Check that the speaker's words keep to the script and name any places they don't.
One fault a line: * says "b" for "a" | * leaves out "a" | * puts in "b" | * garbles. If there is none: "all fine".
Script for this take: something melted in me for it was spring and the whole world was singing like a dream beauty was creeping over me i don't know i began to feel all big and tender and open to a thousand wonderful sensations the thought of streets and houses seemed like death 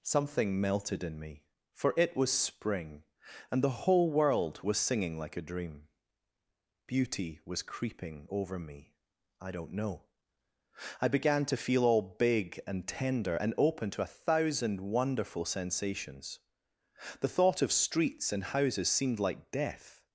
all fine